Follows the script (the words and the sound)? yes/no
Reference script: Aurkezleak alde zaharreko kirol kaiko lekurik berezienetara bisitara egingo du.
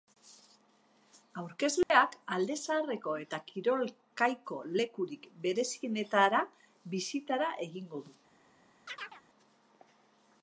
no